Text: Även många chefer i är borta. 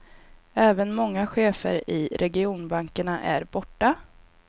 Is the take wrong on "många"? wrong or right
right